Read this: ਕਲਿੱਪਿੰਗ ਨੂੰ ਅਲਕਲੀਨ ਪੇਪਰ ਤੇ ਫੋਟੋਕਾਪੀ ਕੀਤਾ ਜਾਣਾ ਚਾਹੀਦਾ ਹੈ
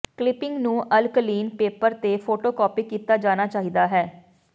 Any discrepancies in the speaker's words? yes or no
no